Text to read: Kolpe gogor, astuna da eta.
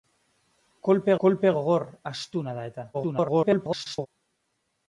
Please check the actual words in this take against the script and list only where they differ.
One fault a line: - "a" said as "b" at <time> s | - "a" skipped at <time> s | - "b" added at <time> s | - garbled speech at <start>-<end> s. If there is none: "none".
- "kolpe" added at 1.2 s
- garbled speech at 2.9-4.1 s